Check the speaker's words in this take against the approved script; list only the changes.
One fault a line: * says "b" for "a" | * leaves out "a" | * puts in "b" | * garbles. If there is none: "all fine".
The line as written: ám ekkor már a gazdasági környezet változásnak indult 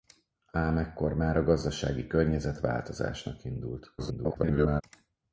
* garbles